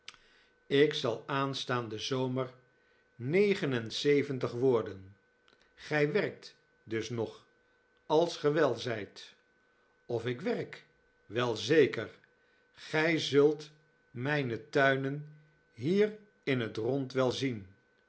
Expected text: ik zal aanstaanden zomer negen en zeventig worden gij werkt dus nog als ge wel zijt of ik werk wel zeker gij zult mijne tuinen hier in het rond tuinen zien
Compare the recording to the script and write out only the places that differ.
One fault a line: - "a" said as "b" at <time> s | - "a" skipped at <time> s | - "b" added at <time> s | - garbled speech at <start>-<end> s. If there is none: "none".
- "tuinen" said as "wel" at 17.1 s